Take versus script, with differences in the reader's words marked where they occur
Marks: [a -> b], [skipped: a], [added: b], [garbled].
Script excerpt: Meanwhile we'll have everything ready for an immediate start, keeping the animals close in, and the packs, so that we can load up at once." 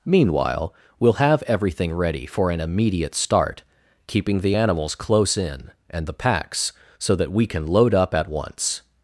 Meanwhile we'll have everything ready for an immediate start, keeping the animals close in, and the packs, so that we can load up at once."